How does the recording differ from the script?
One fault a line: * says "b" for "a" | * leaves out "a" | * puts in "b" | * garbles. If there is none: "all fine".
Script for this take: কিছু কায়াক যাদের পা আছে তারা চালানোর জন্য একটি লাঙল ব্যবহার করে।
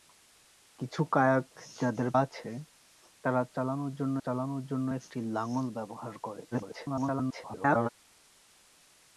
* leaves out "পা"
* puts in "চালানোর জন্য"
* garbles